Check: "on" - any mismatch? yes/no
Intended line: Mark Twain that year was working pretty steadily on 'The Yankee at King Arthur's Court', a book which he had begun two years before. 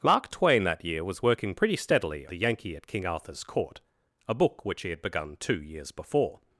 yes